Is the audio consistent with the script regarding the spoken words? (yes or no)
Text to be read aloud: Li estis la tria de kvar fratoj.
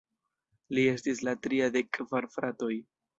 yes